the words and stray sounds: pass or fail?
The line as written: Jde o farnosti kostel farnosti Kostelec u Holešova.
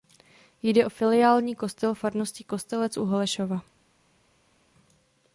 fail